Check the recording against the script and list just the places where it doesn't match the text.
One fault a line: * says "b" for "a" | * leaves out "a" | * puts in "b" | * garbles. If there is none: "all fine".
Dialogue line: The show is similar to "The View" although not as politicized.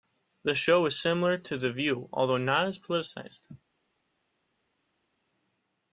all fine